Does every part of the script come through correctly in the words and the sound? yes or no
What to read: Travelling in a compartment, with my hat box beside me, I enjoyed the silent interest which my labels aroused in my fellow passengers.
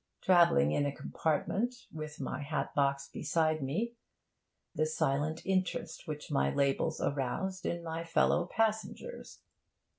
no